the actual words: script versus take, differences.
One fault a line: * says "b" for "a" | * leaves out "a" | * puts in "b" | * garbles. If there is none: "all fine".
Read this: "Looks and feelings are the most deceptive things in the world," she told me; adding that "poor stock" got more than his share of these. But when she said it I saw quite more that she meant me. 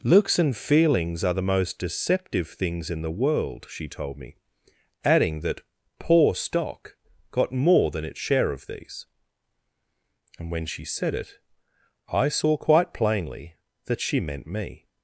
* says "its" for "his"
* says "And" for "But"
* says "plainly" for "more"